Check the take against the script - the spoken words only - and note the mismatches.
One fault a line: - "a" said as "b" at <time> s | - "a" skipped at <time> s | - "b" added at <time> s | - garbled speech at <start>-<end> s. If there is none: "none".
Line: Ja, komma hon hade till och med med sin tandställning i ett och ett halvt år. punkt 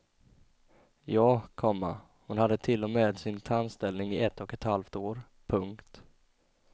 - "med" skipped at 3.2 s